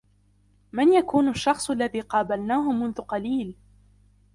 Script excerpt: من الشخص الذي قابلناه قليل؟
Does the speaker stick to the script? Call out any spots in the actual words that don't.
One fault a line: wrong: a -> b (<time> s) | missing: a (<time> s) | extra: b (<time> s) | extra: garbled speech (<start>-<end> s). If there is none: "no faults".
extra: يكون (0.9 s)
extra: منذ (2.7 s)